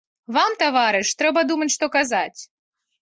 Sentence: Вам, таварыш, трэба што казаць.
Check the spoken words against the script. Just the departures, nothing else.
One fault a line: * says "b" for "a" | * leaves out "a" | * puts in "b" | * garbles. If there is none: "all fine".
* puts in "думаць"